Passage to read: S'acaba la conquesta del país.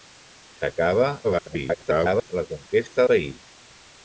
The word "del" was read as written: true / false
false